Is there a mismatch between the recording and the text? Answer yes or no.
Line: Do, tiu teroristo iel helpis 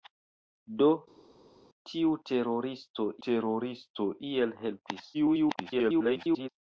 yes